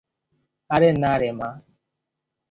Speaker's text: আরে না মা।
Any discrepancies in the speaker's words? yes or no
yes